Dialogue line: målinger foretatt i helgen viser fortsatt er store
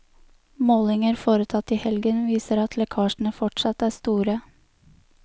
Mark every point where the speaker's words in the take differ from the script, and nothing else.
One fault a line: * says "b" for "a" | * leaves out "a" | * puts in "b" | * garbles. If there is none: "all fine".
* puts in "at lekkasjene"